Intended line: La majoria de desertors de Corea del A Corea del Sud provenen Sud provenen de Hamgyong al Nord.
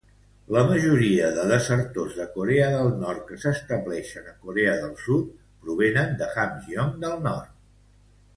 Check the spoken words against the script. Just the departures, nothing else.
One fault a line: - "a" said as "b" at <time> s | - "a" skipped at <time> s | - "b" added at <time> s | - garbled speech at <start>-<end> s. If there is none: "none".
- "Nord que s'estableixen" added at 3.0 s
- "Sud provenen" skipped at 6.2 s
- "al" said as "del" at 7.1 s